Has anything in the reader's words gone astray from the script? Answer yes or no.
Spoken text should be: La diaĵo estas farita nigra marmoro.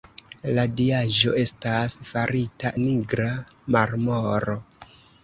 no